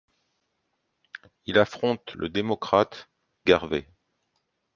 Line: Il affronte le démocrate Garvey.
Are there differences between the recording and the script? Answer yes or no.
no